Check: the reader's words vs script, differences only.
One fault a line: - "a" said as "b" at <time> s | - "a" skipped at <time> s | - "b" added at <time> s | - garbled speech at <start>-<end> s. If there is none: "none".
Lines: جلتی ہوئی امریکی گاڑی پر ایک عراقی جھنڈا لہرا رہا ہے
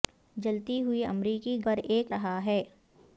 - "گاڑی" skipped at 1.6 s
- "عراقی جھنڈا لہرا" skipped at 2.1 s